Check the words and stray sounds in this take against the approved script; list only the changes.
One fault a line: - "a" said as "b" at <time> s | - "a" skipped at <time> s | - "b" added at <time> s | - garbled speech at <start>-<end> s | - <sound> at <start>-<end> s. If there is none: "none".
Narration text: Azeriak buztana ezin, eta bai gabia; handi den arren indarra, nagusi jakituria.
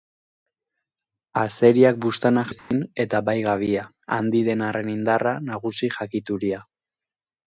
- dropout at 2.6-2.7 s